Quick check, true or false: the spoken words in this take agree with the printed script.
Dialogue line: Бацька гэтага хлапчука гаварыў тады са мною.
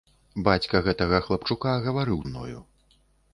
false